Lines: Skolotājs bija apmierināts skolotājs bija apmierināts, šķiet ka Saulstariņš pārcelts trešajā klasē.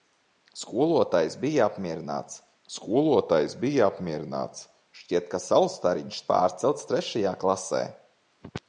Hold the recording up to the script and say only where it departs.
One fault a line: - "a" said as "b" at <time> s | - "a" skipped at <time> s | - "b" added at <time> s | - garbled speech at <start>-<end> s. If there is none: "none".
none